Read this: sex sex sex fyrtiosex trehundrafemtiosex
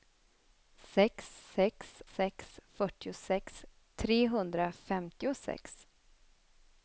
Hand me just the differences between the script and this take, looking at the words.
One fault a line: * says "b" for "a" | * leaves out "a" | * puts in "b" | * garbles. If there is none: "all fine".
all fine